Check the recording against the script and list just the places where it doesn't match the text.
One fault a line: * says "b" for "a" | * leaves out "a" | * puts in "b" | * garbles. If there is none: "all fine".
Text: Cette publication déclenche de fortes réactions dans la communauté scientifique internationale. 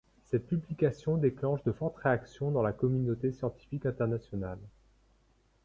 all fine